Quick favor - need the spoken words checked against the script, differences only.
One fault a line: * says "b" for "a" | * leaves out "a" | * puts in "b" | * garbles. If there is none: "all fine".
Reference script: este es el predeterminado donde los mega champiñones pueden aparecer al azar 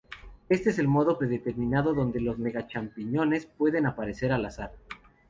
* puts in "modo"